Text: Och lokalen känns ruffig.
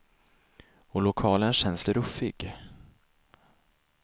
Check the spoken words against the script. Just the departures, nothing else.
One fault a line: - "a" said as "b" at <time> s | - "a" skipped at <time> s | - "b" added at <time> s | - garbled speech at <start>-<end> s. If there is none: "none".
none